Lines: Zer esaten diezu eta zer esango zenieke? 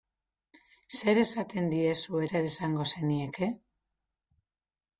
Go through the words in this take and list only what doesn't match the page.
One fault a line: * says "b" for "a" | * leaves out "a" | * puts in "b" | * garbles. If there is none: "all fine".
* leaves out "eta"